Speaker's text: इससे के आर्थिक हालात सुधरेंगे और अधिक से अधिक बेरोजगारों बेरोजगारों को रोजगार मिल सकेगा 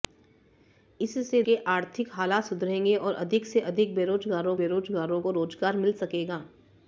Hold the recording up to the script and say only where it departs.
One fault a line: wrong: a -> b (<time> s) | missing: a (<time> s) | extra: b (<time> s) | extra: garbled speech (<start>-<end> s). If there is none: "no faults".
no faults